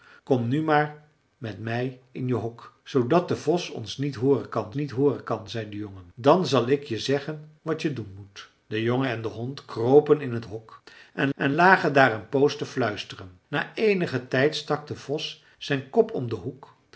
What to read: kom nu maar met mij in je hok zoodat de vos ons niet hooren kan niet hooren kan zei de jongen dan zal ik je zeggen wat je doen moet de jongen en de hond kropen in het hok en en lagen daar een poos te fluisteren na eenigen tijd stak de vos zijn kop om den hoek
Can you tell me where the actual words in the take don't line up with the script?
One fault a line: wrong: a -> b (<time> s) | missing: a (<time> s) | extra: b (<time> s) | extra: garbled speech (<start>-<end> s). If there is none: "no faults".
no faults